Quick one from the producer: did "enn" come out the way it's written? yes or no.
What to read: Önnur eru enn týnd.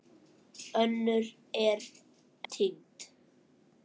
no